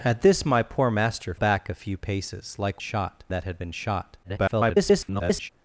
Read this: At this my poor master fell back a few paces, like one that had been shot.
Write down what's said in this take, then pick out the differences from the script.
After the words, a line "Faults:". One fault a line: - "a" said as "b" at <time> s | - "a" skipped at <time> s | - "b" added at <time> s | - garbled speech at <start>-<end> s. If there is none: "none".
At this my poor master back a few paces, like shot that had been shot. [garbled]
Faults:
- "fell" skipped at 1.4 s
- "one" said as "shot" at 2.8 s
- garbled speech at 4.2-5.5 s